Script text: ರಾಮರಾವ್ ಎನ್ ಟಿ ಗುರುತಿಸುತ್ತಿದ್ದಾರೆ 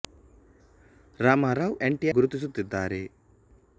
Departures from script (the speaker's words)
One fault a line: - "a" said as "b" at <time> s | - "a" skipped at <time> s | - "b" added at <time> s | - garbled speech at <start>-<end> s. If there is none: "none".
none